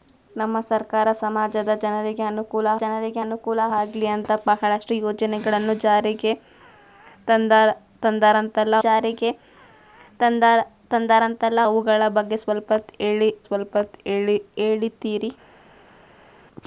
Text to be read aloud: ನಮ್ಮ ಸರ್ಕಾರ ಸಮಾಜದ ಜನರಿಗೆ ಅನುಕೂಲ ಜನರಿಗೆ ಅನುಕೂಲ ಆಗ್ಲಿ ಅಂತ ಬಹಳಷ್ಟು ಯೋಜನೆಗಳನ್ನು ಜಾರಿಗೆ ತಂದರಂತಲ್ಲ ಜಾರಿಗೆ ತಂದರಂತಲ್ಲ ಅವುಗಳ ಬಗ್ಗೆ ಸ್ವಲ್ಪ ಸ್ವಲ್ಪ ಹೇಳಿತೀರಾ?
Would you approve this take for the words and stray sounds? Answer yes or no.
yes